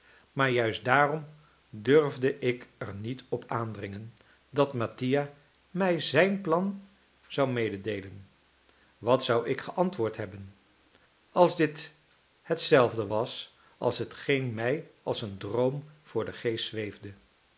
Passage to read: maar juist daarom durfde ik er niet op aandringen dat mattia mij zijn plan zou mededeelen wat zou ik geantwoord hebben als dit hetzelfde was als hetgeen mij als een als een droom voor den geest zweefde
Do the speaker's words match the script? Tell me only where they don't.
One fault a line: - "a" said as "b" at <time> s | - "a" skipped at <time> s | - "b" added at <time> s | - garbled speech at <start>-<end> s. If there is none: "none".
- "als een" skipped at 15.4 s